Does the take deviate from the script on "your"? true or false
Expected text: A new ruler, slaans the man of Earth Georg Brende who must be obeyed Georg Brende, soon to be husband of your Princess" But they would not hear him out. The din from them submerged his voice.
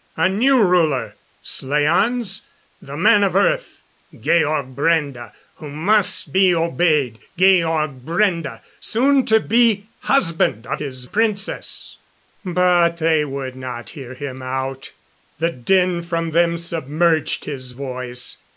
true